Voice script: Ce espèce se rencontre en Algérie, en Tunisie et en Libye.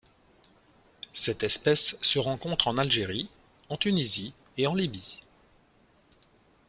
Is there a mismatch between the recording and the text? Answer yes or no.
yes